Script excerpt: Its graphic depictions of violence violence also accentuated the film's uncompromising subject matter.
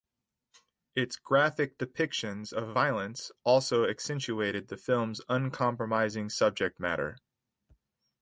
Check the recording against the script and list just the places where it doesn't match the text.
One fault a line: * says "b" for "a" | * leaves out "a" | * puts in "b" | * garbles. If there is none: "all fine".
* leaves out "violence"